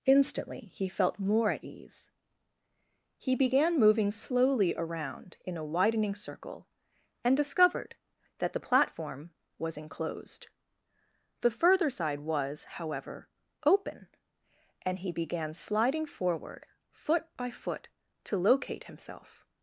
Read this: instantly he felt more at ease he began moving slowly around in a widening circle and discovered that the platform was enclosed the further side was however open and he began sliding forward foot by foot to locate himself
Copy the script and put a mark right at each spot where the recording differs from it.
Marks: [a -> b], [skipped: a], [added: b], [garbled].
instantly he felt more at ease he began moving slowly around in a widening circle and discovered that the platform was enclosed the further side was however open and he began sliding forward foot by foot to locate himself